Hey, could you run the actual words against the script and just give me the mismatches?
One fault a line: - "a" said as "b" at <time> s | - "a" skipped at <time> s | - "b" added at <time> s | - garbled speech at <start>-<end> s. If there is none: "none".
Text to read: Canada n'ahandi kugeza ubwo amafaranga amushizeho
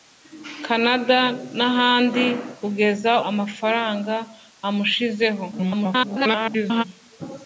- "ubwo" skipped at 3.1 s
- garbled speech at 5.5-6.8 s